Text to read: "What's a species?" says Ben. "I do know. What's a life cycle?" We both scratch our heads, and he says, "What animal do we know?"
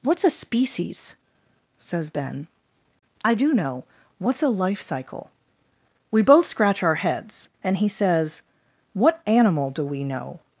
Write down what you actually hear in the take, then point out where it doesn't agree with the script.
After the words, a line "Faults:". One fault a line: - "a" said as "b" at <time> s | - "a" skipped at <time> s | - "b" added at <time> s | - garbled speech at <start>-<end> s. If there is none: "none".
"What's a species?" says Ben. "I do know. What's a life cycle?" We both scratch our heads, and he says, "What animal do we know?"
Faults:
none